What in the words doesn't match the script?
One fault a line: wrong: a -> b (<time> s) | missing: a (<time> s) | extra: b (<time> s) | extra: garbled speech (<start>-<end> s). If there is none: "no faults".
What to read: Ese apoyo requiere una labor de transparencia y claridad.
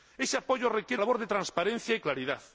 missing: una (1.0 s)